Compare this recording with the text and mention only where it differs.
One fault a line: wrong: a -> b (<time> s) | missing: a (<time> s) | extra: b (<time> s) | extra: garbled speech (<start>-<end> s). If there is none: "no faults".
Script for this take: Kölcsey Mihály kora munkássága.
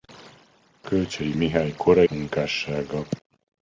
no faults